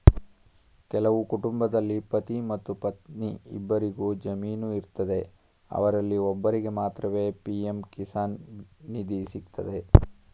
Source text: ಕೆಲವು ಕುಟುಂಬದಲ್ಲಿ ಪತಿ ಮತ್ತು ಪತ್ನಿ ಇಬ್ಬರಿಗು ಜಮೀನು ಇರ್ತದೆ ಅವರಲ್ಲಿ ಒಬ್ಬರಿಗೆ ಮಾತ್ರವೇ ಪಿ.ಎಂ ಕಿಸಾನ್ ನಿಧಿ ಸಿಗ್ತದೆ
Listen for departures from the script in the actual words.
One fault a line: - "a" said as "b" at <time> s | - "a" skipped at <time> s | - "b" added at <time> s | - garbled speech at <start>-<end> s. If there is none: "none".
none